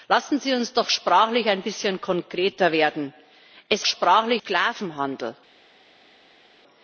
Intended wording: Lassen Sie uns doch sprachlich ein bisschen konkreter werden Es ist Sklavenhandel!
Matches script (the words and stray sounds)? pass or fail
fail